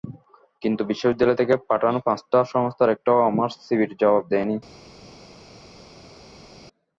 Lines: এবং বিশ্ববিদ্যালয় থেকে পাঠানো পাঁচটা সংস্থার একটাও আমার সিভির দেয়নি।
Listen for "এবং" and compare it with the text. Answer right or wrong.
wrong